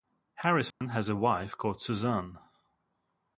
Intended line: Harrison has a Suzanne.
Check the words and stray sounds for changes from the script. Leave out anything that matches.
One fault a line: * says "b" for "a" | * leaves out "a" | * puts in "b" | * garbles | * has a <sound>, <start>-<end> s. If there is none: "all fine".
* has a dropout, 0.7-0.8 s
* puts in "wife called"